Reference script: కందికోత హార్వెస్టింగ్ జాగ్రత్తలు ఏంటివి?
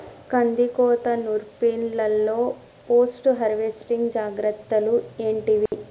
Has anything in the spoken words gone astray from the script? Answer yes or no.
yes